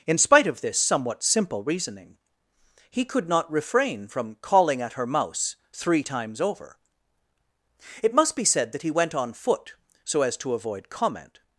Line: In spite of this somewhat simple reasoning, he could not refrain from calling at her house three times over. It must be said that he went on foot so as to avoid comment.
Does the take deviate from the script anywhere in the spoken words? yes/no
yes